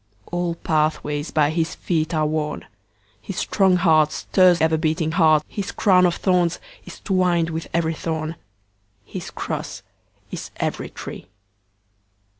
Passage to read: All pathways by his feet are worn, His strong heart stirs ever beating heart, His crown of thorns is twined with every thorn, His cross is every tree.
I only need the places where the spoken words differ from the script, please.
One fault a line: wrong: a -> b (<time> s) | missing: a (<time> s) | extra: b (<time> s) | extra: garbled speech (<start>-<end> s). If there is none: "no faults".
no faults